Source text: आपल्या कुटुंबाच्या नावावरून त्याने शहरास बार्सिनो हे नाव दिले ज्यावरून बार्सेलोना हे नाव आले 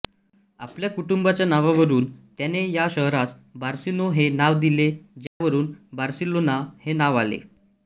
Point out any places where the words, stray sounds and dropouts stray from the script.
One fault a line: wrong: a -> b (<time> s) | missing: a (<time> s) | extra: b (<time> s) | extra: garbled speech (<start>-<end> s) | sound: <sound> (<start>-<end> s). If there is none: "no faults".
extra: या (2.7 s)
sound: dropout (5.3-5.4 s)